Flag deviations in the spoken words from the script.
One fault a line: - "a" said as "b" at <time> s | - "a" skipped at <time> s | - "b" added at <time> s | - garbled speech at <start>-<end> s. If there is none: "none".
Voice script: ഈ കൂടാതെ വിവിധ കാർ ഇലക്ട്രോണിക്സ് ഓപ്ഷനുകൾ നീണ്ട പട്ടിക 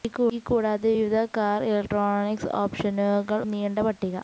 none